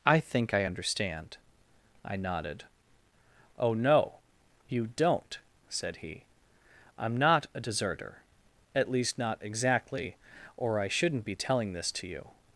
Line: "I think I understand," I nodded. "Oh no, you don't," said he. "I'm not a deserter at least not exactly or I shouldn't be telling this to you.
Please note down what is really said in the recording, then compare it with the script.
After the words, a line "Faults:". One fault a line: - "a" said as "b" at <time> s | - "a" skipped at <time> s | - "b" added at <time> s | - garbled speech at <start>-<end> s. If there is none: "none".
"I think I understand," I nodded. "Oh no, you don't," said he. "I'm not a deserter at least not exactly or I shouldn't be telling this to you.
Faults:
none